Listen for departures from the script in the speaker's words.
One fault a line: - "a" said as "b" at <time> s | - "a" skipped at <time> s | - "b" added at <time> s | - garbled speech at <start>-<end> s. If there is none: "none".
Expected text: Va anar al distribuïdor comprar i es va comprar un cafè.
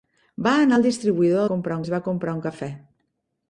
none